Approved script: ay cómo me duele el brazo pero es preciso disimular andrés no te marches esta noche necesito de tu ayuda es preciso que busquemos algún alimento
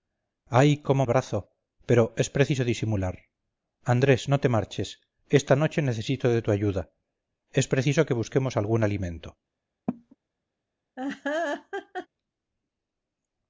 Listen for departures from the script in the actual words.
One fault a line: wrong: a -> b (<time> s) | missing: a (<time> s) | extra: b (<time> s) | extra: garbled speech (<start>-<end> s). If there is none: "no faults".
missing: me duele el (1.1 s)